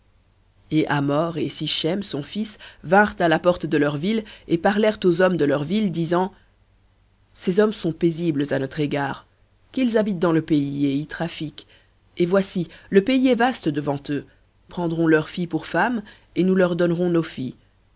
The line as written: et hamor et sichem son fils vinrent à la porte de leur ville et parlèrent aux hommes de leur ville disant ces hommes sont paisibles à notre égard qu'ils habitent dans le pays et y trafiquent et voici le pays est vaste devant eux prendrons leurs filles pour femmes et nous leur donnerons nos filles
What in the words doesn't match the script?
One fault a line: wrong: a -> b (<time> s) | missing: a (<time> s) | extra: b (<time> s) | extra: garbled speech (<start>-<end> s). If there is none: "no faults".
no faults